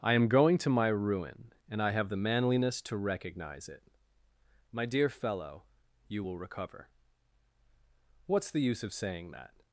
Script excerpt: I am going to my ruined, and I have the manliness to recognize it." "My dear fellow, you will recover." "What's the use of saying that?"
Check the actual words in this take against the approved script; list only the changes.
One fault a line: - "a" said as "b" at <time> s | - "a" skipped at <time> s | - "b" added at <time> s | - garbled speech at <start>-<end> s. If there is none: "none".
- "ruined" said as "ruin" at 0.9 s